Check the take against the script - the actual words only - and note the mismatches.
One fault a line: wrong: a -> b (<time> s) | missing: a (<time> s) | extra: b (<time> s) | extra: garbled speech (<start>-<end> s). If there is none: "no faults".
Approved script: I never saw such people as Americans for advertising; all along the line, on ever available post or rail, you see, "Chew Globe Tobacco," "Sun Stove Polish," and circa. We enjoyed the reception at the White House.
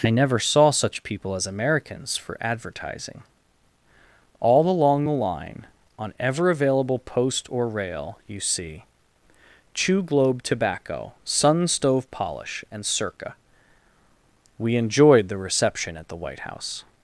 no faults